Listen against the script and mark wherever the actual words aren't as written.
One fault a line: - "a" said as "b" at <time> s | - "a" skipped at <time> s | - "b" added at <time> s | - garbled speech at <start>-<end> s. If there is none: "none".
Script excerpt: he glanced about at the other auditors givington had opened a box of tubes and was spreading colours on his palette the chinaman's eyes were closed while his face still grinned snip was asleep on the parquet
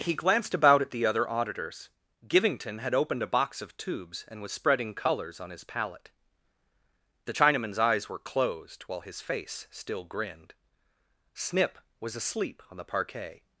none